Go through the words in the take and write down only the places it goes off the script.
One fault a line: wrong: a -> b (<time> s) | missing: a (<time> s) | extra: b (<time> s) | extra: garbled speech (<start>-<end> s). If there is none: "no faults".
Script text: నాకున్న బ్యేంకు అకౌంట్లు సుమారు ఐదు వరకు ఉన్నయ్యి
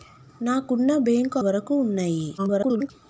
missing: అకౌంట్లు సుమారు ఐదు (1.4 s)
extra: garbled speech (2.4-2.9 s)